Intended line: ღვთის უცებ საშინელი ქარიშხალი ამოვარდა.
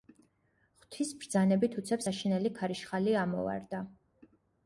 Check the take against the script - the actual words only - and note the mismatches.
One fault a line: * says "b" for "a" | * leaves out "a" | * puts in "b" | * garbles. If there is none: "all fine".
* puts in "ბრძანებით"